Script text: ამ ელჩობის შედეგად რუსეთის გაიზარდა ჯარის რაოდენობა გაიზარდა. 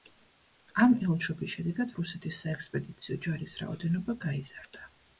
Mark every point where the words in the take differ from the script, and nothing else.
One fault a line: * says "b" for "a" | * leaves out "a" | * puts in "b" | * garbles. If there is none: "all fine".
* says "საექსპედიციო" for "გაიზარდა"